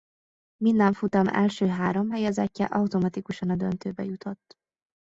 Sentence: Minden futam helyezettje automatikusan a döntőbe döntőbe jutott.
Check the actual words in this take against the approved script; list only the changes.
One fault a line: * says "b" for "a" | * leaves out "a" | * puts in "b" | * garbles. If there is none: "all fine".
* puts in "első három"
* leaves out "döntőbe"